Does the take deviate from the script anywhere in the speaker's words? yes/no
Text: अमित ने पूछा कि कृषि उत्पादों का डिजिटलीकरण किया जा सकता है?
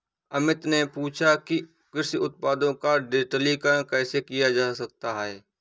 yes